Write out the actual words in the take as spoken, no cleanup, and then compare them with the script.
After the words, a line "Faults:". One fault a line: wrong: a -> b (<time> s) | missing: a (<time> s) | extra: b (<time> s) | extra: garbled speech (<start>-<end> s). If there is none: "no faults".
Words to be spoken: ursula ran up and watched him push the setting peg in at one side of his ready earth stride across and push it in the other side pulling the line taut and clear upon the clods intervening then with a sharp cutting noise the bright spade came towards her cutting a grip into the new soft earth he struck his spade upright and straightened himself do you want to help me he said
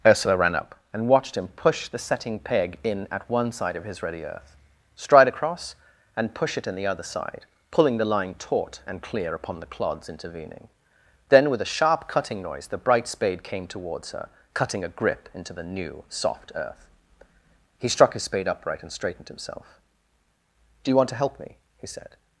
ursula ran up and watched him push the setting peg in at one side of his ready earth stride across and push it in the other side pulling the line taut and clear upon the clods intervening then with a sharp cutting noise the bright spade came towards her cutting a grip into the new soft earth he struck his spade upright and straightened himself do you want to help me he said
Faults:
no faults